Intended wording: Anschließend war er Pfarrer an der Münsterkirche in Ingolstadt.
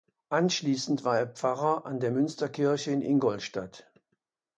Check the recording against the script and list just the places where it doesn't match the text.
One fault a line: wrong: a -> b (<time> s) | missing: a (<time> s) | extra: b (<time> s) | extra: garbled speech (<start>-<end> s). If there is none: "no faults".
no faults